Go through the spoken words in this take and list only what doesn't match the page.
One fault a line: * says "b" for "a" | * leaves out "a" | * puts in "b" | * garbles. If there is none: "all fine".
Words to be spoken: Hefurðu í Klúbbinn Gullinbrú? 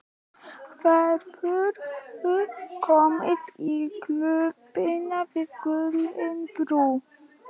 * puts in "komið"
* puts in "við"